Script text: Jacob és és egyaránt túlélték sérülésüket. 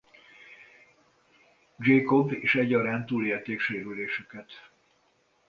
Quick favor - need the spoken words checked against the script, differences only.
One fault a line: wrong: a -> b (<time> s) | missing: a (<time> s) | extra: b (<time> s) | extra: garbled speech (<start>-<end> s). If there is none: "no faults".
missing: és (2.5 s)